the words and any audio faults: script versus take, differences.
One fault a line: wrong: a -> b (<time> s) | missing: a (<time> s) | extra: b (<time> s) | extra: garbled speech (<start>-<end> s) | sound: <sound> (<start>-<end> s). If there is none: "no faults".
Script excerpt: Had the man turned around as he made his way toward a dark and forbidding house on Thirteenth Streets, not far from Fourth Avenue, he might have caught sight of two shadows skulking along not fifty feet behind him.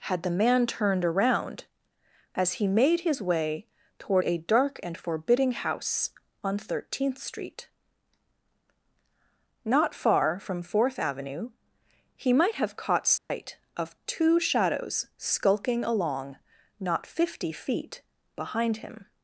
wrong: Streets -> Street (7.2 s)
sound: dropout (13.2-13.3 s)